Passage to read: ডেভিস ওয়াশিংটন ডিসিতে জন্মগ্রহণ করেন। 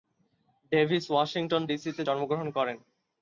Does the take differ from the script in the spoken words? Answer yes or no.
no